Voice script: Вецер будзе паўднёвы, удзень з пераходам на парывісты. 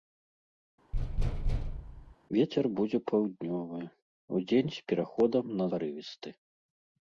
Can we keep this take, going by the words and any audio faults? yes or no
no